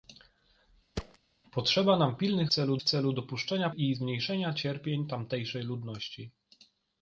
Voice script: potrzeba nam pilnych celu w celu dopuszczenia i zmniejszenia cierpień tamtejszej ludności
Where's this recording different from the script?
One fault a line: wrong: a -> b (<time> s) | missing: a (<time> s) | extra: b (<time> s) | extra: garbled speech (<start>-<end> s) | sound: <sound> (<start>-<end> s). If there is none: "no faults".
sound: thud (1.0-1.2 s)